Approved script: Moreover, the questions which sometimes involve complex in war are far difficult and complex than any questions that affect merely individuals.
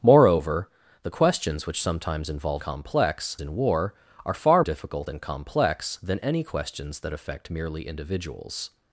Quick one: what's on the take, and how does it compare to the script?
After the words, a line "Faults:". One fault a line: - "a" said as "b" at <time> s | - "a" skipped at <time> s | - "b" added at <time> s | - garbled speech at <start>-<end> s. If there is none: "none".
Moreover, the questions which sometimes involve complex in war are far difficult and complex than any questions that affect merely individuals.
Faults:
none